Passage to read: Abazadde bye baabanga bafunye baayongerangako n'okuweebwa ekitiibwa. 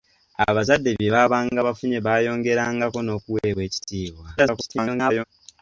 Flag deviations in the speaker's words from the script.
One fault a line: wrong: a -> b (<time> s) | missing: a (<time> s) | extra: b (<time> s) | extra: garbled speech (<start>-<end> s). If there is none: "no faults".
extra: garbled speech (4.4-5.2 s)